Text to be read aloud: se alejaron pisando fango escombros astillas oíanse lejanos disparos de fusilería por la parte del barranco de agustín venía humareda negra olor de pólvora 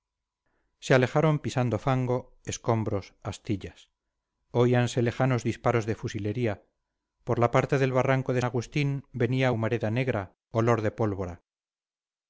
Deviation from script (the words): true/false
false